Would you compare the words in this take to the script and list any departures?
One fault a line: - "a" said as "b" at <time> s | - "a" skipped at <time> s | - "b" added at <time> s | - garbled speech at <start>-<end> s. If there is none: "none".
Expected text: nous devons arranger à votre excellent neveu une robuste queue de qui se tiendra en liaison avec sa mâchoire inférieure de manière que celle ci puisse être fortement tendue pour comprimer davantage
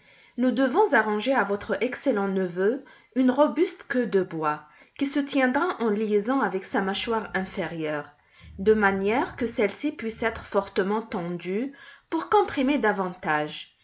- "bois" added at 4.2 s